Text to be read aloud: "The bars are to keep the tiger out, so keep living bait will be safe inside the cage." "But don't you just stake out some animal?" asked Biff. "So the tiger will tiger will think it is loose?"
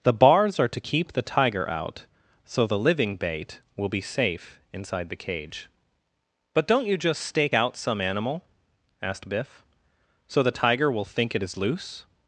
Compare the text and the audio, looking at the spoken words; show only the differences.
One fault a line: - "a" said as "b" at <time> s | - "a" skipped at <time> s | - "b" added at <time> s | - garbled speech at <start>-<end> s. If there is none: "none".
- "keep" said as "the" at 2.6 s
- "tiger will" skipped at 11.0 s